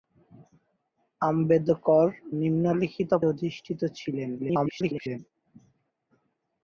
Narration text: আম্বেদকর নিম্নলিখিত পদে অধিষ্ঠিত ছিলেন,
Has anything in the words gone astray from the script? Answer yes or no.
yes